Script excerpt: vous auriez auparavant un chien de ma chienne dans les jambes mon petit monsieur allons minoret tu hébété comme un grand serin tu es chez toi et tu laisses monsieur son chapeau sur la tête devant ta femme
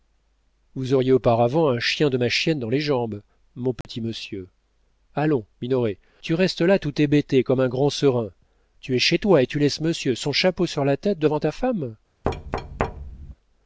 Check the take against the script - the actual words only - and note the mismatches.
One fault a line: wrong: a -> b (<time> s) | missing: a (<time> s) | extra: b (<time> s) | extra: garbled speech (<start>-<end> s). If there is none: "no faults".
extra: restes là tout (6.3 s)